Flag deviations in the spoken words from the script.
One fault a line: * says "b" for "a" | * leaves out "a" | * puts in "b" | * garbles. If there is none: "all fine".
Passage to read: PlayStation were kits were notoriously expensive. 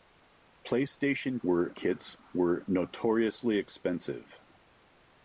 all fine